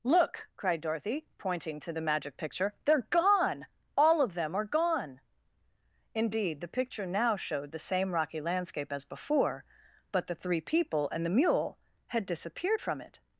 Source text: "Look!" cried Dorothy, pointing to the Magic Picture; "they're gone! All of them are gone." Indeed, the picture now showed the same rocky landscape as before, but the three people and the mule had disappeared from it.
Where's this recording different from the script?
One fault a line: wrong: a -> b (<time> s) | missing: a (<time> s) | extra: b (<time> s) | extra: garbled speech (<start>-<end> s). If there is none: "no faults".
no faults